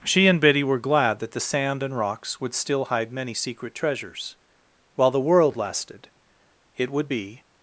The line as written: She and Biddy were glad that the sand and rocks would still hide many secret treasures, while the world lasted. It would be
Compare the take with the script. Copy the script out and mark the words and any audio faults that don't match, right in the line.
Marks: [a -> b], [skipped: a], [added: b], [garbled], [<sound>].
She and Biddy were glad that the sand and rocks would still hide many secret treasures, while the world lasted. It would be